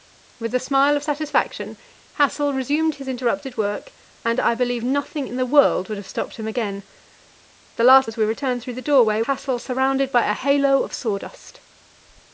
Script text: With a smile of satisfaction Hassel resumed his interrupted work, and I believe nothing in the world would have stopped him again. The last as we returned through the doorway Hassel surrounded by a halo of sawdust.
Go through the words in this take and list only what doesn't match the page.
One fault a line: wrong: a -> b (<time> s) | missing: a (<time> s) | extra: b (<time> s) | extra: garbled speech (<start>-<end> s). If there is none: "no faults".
no faults